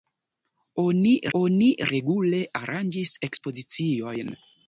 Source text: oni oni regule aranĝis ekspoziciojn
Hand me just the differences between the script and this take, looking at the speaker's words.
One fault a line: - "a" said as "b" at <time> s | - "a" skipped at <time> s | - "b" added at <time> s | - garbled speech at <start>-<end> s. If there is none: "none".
none